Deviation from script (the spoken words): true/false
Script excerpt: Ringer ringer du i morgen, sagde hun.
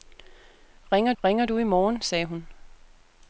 false